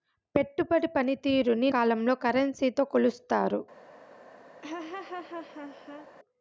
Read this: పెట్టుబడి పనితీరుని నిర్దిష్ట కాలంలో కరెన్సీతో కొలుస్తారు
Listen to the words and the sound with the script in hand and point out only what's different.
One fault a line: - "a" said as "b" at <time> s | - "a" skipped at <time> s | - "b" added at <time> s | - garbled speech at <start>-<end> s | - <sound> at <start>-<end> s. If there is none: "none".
- "నిర్దిష్ట" skipped at 1.7 s
- laugh at 4.6-6.1 s